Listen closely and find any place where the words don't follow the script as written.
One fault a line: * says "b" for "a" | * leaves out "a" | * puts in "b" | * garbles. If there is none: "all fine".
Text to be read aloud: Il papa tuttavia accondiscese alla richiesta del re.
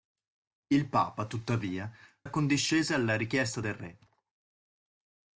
all fine